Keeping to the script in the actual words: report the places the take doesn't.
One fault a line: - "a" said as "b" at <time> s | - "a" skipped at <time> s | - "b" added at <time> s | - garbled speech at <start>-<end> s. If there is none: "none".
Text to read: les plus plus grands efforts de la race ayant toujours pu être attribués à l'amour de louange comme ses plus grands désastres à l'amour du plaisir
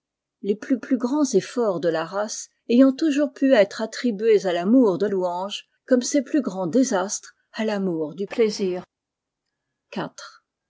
none